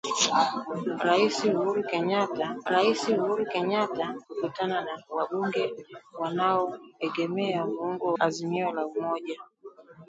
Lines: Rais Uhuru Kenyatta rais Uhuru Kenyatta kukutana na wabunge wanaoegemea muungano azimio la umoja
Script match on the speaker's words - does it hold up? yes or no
yes